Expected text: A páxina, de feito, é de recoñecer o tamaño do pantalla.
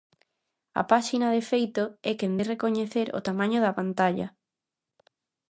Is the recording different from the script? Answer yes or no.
yes